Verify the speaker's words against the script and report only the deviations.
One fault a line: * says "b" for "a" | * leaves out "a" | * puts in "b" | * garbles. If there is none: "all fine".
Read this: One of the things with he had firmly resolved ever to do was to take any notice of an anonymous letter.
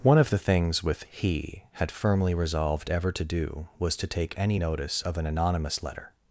all fine